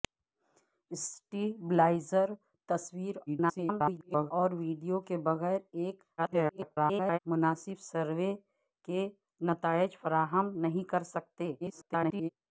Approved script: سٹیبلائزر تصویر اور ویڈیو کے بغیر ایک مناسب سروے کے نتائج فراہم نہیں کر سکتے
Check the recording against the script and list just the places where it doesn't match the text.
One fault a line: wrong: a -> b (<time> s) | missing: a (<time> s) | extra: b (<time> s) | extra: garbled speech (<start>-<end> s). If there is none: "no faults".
extra: garbled speech (3.3-4.3 s)
extra: garbled speech (6.2-7.2 s)
extra: garbled speech (11.6-12.3 s)